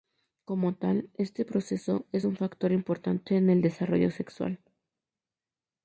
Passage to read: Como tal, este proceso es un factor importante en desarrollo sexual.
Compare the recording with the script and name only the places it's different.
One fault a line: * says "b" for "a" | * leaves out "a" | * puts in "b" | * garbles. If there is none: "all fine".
* puts in "el"